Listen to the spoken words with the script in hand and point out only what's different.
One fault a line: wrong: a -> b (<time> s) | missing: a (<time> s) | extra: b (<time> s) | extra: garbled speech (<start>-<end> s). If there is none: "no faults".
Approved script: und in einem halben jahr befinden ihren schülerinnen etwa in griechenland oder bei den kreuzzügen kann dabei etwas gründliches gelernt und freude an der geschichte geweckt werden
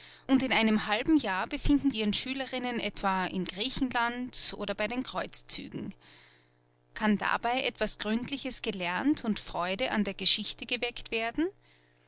no faults